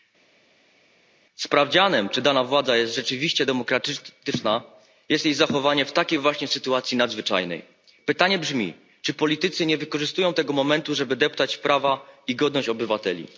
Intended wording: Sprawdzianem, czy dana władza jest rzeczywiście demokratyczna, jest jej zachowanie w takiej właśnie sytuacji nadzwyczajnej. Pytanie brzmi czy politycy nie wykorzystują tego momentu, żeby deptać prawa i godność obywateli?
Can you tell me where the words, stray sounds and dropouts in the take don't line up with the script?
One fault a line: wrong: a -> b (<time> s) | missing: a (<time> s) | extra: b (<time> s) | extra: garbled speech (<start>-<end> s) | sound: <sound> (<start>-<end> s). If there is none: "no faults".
no faults